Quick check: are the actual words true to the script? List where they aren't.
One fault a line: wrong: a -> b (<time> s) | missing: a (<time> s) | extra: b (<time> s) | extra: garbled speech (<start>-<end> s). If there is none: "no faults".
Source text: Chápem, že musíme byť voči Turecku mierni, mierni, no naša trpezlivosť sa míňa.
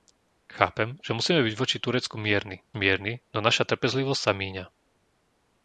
no faults